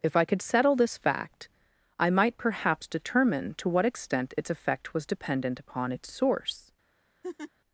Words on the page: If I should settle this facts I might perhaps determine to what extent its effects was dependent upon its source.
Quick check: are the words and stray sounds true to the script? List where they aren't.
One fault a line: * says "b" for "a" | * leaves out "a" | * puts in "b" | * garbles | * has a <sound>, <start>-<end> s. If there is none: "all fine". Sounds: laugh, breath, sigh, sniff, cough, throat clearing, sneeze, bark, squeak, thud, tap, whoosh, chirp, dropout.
* says "could" for "should"
* says "fact" for "facts"
* says "effect" for "effects"
* has a laugh, 7.2-7.5 s